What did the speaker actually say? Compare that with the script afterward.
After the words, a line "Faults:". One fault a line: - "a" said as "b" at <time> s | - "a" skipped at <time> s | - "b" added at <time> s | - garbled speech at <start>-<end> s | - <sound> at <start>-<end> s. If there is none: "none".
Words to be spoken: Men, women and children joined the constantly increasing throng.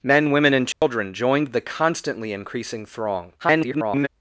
Men, women and children joined the constantly increasing throng. [garbled]
Faults:
- dropout at 0.7-0.8 s
- garbled speech at 3.4-4.1 s